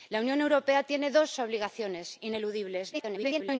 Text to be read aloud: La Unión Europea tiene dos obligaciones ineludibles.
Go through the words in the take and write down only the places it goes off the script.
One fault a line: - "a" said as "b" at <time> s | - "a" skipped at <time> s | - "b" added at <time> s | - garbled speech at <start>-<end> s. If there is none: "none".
- garbled speech at 2.9-3.6 s